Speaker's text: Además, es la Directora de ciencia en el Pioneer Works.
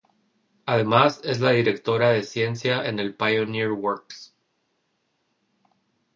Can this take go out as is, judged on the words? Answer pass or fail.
pass